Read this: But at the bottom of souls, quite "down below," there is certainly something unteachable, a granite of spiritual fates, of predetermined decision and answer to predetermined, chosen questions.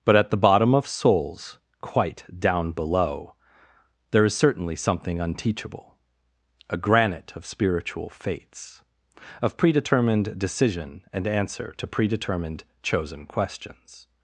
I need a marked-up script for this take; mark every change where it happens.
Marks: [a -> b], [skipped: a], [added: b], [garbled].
But at the bottom of souls, quite "down below," there is certainly something unteachable, a granite of spiritual fates, of predetermined decision and answer to predetermined, chosen questions.